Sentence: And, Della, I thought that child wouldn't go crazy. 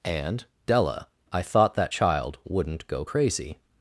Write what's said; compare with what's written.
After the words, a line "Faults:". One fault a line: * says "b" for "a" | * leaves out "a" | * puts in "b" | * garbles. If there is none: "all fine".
And, Della, I thought that child wouldn't go crazy.
Faults:
all fine